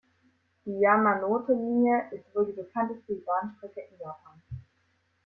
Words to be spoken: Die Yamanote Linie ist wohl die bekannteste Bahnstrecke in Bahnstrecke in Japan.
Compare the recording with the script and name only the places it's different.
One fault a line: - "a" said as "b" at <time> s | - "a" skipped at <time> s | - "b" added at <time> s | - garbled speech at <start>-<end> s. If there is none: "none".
- "Bahnstrecke in" skipped at 4.0 s